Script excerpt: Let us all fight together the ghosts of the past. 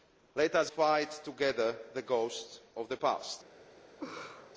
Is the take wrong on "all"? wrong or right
wrong